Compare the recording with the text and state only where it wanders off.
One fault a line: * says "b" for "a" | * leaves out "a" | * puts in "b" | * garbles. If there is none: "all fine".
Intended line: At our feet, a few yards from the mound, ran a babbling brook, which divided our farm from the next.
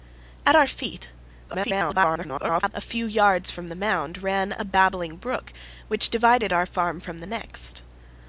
* garbles